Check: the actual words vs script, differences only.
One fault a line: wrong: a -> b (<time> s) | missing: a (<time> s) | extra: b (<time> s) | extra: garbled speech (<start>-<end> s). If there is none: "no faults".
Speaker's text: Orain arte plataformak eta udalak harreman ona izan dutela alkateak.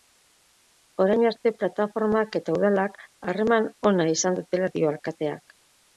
extra: dio (4.8 s)